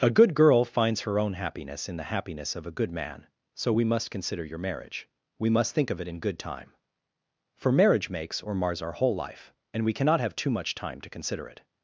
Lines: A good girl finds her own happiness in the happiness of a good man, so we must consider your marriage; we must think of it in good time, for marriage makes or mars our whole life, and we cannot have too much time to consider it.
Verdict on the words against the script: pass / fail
pass